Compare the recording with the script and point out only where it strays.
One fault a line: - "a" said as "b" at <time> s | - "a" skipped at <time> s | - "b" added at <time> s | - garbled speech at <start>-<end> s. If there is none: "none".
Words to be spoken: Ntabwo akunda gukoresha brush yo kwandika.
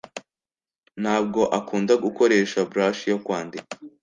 none